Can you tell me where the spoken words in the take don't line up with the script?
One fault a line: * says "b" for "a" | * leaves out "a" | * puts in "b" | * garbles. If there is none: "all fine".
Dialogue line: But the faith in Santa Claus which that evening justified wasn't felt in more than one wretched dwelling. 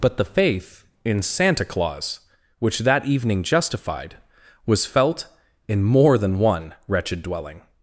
* says "was" for "wasn't"